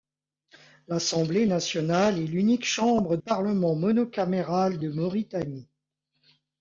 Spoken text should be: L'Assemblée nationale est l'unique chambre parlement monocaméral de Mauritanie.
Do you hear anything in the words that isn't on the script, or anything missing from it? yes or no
no